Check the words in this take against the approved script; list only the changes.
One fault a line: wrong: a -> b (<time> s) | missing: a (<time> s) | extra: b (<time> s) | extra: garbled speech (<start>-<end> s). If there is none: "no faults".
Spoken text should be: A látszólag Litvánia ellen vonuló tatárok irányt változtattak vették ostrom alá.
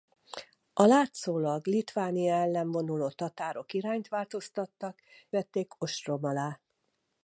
no faults